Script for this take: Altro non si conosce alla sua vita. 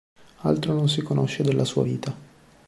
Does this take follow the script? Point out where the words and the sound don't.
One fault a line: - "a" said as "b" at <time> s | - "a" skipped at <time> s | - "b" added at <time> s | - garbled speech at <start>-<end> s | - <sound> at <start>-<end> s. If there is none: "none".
- "alla" said as "della" at 1.4 s